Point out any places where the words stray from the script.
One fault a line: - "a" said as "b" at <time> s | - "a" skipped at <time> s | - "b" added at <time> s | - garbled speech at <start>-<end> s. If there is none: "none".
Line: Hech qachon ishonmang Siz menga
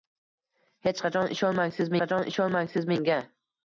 - "qachon ishonmang Siz" added at 2.1 s